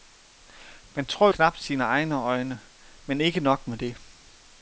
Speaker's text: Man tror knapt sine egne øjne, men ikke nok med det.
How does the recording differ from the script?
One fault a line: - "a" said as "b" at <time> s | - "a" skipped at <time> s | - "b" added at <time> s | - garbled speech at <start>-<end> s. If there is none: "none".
none